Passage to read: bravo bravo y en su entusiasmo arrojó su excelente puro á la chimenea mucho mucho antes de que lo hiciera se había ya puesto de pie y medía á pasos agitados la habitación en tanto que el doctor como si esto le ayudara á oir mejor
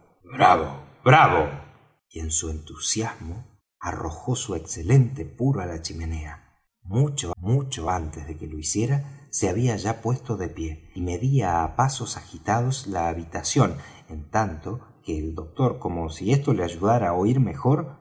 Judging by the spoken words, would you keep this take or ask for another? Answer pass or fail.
pass